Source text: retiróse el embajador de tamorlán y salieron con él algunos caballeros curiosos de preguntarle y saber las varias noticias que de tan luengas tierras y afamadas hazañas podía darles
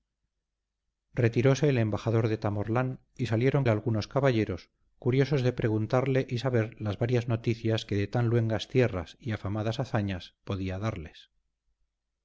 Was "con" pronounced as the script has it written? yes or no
no